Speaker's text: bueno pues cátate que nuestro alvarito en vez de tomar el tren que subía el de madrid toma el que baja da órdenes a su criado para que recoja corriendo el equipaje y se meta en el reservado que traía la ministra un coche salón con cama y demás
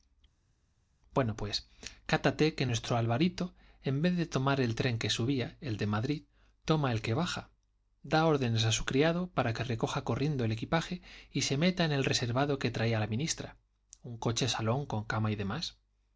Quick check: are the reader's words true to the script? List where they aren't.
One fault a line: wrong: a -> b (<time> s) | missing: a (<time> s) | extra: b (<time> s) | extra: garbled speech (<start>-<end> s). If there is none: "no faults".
no faults